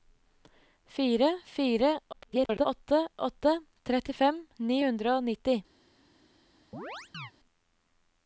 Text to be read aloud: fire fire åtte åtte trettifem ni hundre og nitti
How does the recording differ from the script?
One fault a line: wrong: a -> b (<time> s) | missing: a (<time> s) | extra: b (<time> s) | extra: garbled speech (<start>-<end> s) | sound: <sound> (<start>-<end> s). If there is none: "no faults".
extra: garbled speech (2.1-2.7 s)
sound: chirp (6.7-7.3 s)